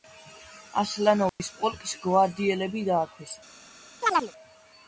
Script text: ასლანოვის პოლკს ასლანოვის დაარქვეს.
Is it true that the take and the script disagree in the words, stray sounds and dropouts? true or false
true